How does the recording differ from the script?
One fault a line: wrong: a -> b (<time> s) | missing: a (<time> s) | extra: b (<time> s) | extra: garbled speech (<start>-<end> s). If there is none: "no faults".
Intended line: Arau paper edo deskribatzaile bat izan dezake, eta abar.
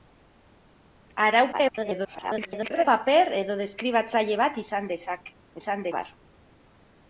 extra: garbled speech (1.5-2.8 s)
wrong: eta -> izan (5.6 s)